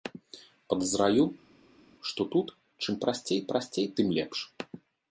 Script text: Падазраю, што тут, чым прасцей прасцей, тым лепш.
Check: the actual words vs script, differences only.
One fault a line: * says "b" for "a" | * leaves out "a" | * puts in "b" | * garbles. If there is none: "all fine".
all fine